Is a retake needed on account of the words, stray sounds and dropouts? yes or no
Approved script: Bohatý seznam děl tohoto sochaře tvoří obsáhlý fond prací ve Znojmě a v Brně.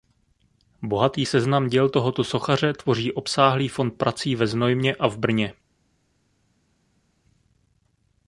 no